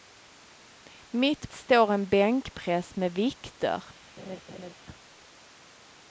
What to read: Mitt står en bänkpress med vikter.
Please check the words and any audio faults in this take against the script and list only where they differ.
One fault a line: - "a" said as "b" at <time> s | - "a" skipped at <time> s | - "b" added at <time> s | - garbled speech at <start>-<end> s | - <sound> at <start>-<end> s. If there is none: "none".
- laugh at 4.2-4.7 s